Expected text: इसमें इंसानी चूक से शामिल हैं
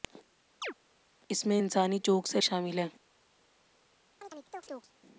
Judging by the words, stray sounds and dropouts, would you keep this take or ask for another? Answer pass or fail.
fail